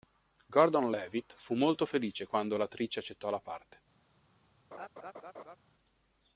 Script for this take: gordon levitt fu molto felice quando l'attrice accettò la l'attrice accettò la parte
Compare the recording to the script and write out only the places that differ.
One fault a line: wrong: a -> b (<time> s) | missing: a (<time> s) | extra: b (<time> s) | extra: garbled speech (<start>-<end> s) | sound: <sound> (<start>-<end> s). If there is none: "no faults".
missing: l'attrice accettò la (3.4 s)
sound: laugh (4.7-5.6 s)